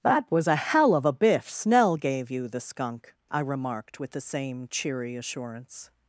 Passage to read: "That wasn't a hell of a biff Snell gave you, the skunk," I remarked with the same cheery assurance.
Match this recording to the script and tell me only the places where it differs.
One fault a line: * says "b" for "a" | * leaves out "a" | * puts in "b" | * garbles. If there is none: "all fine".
* says "was" for "wasn't"